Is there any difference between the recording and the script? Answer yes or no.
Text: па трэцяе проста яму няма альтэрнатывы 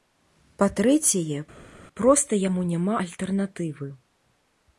no